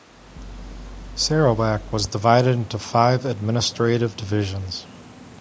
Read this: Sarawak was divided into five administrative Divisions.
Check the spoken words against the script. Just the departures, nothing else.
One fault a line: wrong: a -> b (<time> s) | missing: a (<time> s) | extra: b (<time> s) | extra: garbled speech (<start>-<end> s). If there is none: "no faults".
no faults